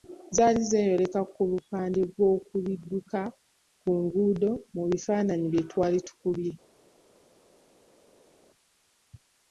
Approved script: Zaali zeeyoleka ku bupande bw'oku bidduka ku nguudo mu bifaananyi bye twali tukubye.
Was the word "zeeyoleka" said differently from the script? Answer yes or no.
no